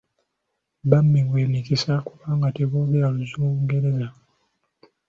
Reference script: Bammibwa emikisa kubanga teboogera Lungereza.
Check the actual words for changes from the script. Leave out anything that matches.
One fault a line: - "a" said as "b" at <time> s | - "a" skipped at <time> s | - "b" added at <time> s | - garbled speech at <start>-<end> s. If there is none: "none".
none